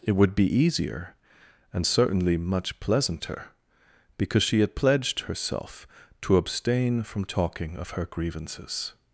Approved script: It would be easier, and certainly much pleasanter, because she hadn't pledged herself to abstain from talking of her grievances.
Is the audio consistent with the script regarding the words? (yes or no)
no